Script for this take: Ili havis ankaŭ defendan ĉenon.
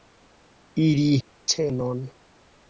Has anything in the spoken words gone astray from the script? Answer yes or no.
yes